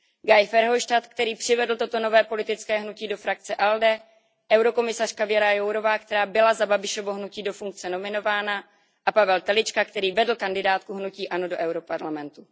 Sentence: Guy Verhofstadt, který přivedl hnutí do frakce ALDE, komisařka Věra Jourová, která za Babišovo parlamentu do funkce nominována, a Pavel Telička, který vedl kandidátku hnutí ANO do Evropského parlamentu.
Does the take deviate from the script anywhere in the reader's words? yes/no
yes